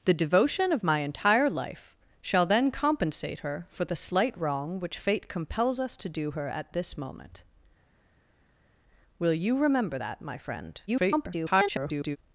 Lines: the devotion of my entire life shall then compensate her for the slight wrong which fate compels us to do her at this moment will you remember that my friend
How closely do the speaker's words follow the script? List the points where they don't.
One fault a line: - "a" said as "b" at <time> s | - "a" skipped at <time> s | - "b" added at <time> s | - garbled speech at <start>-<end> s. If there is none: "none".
- garbled speech at 10.9-12.2 s